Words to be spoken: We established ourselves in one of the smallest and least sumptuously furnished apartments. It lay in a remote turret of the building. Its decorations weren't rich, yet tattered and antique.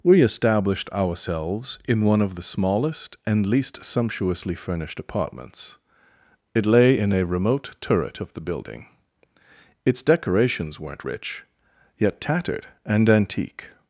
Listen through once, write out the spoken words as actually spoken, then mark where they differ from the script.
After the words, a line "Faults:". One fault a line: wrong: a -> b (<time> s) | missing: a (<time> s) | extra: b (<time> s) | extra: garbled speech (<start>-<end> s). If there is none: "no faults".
We established ourselves in one of the smallest and least sumptuously furnished apartments. It lay in a remote turret of the building. Its decorations weren't rich, yet tattered and antique.
Faults:
no faults